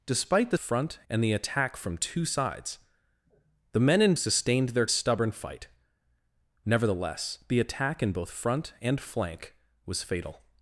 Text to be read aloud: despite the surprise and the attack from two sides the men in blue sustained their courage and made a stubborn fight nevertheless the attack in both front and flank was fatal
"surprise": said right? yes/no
no